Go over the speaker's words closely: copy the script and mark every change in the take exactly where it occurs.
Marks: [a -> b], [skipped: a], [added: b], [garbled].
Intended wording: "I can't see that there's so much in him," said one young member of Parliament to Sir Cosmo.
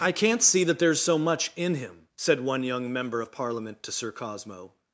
"I can't see that there's so much in him," said one young member of Parliament to Sir Cosmo.